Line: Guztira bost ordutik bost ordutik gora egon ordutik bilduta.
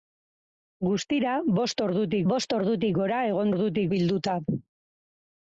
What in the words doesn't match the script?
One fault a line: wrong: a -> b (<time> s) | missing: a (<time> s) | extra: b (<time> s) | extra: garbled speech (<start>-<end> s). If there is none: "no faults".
no faults